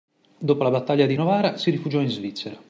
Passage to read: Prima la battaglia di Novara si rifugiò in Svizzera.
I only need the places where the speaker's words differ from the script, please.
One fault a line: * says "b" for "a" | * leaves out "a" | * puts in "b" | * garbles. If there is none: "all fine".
* says "Dopo" for "Prima"